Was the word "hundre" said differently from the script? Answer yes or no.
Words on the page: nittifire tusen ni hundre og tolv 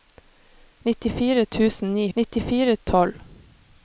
yes